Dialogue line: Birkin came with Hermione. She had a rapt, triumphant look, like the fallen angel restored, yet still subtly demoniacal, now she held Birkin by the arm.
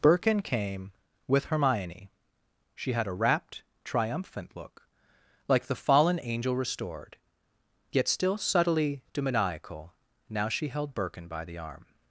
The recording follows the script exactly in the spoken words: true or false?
true